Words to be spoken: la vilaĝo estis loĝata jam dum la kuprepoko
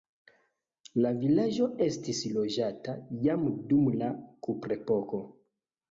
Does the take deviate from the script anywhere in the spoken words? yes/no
no